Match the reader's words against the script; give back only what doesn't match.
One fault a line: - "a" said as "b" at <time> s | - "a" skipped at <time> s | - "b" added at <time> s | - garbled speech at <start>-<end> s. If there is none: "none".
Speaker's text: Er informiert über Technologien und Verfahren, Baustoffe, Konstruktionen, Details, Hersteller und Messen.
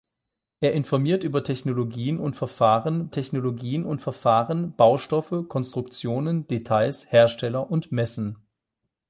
- "Technologien und Verfahren" added at 3.1 s